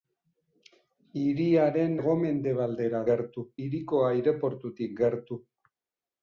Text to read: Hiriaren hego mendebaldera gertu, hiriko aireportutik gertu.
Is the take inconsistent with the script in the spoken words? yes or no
no